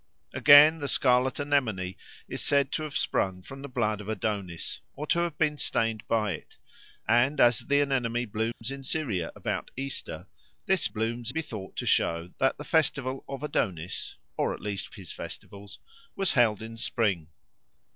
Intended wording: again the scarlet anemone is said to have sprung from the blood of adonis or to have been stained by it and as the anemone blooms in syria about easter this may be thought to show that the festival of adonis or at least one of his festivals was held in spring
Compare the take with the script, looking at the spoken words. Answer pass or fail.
fail